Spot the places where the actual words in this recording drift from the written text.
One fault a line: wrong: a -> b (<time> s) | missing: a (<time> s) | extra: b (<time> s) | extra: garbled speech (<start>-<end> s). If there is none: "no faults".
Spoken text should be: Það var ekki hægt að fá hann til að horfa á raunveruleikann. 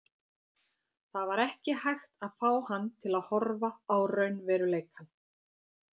no faults